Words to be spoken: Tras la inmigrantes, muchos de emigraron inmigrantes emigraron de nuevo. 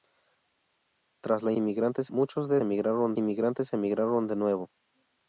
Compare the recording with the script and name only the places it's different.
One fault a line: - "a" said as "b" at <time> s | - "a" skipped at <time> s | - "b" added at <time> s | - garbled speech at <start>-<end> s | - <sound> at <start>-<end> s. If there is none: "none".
none